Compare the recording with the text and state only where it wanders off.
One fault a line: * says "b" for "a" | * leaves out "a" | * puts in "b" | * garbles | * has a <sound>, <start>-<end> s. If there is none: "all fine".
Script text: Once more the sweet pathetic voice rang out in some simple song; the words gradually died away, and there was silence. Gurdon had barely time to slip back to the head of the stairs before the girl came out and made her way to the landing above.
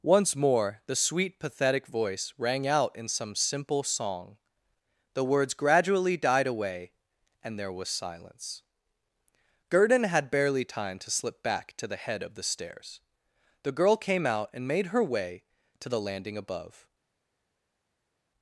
* leaves out "before"